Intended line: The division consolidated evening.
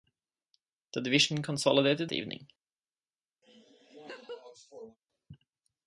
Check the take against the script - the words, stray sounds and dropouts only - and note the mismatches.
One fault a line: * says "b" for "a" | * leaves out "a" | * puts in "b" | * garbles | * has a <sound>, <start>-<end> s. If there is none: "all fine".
* has a laugh, 3.4-5.0 s